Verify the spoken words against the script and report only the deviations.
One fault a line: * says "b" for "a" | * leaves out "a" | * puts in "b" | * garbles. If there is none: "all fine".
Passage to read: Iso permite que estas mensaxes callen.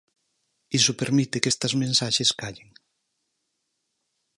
all fine